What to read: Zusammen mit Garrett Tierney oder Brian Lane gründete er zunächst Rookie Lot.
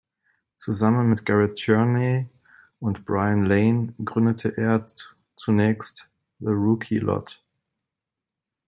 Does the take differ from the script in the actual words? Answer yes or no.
yes